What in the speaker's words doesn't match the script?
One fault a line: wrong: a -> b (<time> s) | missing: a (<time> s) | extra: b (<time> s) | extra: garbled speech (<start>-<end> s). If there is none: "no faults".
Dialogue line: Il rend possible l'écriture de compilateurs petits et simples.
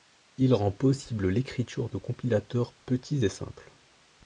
no faults